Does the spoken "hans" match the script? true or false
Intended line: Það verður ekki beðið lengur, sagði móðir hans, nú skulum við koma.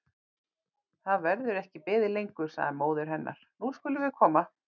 false